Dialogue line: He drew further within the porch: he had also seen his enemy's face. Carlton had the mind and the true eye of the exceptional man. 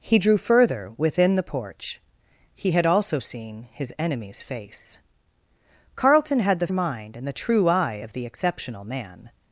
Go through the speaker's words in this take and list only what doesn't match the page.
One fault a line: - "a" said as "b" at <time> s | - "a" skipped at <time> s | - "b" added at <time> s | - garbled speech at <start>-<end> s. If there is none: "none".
none